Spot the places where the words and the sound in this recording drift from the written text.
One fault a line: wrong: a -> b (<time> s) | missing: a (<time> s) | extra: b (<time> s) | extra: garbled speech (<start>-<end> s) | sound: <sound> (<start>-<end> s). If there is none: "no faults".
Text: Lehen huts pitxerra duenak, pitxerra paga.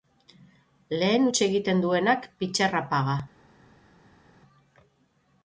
wrong: pitxerra -> egiten (1.5 s)